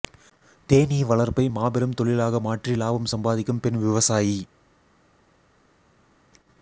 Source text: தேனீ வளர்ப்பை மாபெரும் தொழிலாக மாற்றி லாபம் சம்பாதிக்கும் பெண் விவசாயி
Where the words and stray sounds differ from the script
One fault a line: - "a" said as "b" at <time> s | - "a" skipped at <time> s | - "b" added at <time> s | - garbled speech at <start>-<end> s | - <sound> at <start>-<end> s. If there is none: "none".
none